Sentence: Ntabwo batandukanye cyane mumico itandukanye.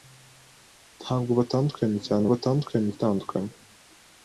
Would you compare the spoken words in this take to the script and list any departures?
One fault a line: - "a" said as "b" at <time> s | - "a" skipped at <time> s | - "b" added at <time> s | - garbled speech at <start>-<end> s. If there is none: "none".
- "mumico" said as "batandukanye" at 2.3 s